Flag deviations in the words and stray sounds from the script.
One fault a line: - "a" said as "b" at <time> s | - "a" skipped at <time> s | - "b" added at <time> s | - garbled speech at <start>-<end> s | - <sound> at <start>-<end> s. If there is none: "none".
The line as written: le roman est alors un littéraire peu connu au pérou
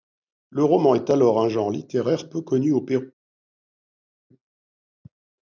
- "genre" added at 1.5 s